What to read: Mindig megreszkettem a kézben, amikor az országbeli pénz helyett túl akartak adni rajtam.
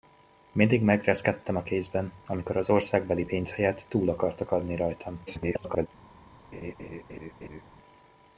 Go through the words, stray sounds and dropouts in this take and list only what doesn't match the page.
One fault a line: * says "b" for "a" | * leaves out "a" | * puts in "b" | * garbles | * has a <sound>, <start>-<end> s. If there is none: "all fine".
* garbles
* has a laugh, 6.5-7.6 s